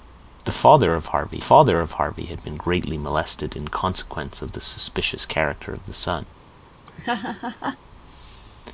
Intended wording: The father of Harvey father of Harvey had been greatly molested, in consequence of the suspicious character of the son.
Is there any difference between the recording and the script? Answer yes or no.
no